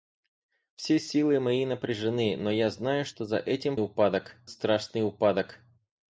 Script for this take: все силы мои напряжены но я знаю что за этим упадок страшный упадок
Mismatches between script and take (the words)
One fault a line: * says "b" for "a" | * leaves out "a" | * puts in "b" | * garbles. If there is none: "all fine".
all fine